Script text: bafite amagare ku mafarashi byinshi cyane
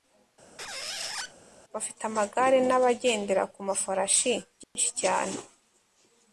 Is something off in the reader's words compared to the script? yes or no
yes